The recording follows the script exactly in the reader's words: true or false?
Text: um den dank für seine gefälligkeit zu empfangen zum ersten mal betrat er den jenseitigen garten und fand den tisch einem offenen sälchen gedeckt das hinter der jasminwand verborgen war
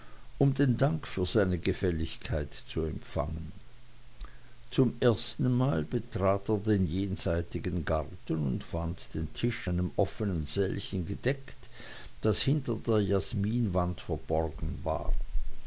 true